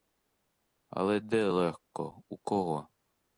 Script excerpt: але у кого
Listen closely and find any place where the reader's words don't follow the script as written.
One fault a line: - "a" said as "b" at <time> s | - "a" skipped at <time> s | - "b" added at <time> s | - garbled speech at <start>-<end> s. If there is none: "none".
- "де легко" added at 1.2 s